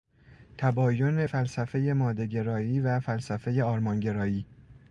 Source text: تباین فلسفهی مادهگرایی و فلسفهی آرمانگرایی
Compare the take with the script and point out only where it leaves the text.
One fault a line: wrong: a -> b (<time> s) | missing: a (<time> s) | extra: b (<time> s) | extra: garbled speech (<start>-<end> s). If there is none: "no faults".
no faults